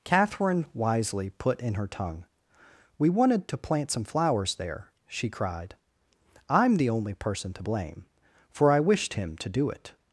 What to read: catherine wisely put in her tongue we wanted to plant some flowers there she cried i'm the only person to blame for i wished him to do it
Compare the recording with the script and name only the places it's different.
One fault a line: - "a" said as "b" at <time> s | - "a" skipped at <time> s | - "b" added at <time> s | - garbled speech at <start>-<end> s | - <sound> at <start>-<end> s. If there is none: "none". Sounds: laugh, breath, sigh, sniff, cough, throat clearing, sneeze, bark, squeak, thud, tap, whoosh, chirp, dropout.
none